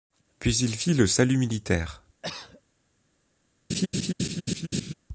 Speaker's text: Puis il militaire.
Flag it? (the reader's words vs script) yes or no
yes